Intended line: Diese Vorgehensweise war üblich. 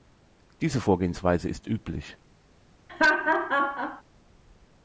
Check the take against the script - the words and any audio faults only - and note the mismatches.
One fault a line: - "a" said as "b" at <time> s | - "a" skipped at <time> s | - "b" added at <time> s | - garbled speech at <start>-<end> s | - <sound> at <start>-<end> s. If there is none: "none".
- "war" said as "ist" at 1.5 s
- laugh at 2.9-4.0 s